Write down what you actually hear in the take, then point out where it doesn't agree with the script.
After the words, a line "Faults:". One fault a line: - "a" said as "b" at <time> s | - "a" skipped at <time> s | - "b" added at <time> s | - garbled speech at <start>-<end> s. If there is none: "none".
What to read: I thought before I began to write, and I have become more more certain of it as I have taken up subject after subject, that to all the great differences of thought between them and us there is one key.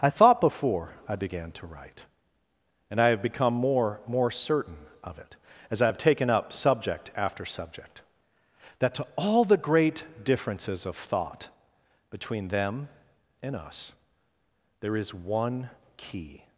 I thought before I began to write, and I have become more more certain of it as I have taken up subject after subject, that to all the great differences of thought between them and us there is one key.
Faults:
none